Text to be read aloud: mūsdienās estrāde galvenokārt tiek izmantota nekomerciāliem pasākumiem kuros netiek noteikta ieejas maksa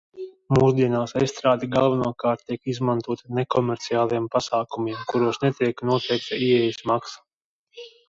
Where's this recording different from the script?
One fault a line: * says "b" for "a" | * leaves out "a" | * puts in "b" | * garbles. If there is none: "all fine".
all fine